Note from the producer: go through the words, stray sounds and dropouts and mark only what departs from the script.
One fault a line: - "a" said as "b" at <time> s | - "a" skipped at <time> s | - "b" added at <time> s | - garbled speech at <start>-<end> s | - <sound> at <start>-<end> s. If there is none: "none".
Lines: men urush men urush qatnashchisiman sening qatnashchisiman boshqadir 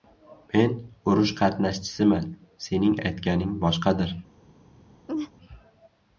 - "men urush" skipped at 1.3 s
- "qatnashchisiman" said as "aytganing" at 3.1 s
- laugh at 5.1-5.3 s